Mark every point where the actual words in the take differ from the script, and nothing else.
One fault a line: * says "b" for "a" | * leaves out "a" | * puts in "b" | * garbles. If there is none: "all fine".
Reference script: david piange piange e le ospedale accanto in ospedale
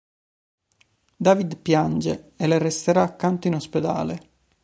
* leaves out "piange"
* says "resterà" for "ospedale"